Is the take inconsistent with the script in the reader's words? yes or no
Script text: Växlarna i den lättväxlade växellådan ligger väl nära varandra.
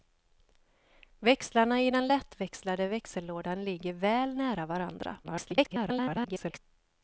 yes